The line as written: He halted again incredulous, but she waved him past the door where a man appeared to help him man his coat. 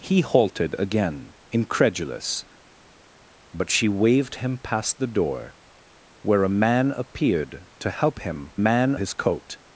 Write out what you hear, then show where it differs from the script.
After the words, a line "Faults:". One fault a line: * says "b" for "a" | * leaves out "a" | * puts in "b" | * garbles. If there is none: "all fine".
He halted again incredulous, but she waved him past the door where a man appeared to help him man his coat.
Faults:
all fine